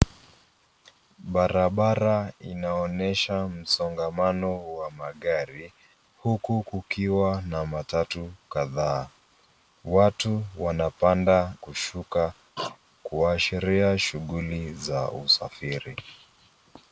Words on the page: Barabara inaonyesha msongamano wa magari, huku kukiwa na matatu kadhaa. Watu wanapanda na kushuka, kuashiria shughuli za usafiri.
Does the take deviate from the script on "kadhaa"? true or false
false